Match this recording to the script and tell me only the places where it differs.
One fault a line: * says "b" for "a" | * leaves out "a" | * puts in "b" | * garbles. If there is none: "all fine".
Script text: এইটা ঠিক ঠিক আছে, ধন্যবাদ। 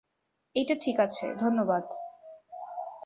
* leaves out "ঠিক"